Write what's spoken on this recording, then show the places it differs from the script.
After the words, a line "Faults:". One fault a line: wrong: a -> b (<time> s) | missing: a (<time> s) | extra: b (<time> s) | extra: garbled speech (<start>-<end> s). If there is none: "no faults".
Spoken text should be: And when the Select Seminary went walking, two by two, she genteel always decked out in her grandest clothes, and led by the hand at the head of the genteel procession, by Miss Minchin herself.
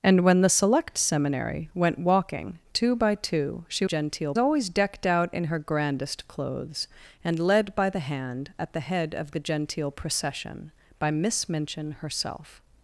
And when the Select Seminary went walking, two by two, she genteel always decked out in her grandest clothes, and led by the hand at the head of the genteel procession, by Miss Minchin herself.
Faults:
no faults